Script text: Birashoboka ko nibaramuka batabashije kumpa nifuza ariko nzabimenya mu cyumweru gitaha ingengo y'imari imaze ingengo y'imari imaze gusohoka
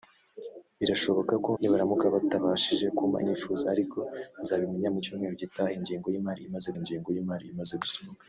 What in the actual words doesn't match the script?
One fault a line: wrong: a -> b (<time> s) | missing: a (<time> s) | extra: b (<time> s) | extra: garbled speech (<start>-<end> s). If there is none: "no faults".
no faults